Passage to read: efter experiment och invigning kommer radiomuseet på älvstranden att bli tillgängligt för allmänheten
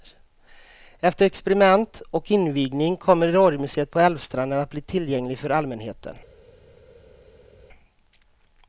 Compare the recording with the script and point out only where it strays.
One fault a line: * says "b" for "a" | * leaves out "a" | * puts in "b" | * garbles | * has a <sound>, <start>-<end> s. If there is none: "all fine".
all fine